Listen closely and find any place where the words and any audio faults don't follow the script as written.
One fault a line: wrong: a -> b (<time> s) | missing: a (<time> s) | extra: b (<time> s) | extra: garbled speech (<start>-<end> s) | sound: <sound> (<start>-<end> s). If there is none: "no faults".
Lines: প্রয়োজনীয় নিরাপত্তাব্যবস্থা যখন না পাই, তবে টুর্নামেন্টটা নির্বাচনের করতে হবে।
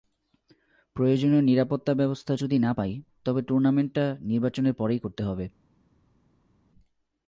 wrong: যখন -> যদি (2.3 s)
extra: পরেই (4.7 s)